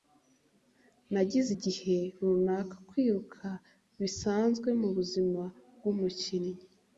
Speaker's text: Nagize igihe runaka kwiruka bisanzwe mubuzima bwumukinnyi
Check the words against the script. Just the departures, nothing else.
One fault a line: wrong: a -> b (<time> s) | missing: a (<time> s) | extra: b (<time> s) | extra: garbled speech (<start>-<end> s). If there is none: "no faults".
no faults